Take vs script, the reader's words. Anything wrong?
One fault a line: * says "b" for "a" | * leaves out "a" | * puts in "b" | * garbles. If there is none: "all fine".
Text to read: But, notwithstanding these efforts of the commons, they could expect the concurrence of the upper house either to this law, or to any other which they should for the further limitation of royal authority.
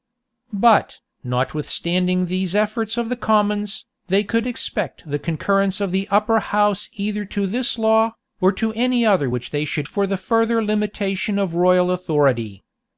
all fine